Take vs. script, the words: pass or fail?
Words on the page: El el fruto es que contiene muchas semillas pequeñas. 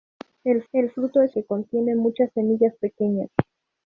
pass